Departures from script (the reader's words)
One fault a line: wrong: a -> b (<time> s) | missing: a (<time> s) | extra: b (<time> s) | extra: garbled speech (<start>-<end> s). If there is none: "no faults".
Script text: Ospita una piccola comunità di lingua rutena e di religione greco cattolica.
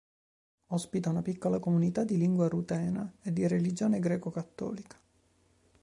no faults